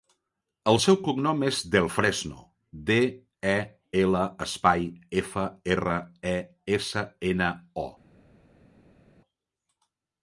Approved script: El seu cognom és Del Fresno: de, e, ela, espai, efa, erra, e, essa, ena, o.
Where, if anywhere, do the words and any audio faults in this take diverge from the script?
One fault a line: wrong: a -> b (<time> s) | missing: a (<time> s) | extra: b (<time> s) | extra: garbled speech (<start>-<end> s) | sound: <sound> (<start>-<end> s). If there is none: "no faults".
no faults